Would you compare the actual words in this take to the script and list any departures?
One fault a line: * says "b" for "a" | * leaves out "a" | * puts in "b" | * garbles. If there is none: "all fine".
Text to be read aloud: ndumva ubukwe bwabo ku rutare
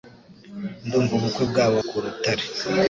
all fine